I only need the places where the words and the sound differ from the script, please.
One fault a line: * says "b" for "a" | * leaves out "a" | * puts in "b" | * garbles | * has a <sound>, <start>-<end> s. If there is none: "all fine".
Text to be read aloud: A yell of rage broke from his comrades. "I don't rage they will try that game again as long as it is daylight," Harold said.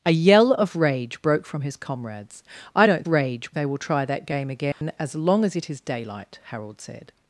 * has a dropout, 4.7-4.8 s